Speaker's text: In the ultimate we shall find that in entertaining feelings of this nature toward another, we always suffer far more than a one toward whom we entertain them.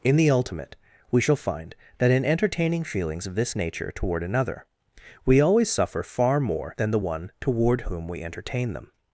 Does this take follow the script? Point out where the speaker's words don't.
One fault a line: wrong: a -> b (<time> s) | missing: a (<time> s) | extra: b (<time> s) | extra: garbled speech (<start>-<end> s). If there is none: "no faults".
wrong: a -> the (6.9 s)